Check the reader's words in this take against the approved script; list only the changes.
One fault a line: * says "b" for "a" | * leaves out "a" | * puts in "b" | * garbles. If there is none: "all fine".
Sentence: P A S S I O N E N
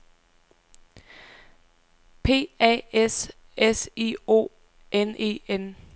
all fine